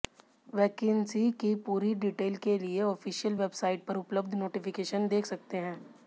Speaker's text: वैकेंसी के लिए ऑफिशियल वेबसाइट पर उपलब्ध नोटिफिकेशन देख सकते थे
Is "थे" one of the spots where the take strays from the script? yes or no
yes